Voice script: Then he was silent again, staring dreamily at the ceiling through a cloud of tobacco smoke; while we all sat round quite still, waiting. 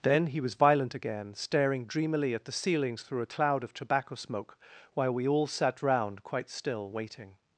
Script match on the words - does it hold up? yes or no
no